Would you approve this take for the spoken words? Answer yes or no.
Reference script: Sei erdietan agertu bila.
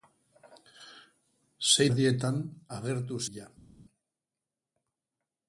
yes